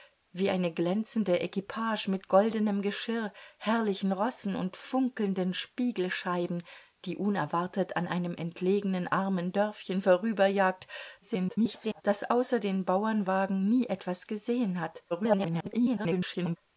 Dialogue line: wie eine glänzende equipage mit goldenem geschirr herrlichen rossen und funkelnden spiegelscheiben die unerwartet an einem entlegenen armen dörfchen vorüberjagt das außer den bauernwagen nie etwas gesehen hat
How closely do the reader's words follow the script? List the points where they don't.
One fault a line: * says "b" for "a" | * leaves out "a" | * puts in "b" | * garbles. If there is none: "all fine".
* garbles
* garbles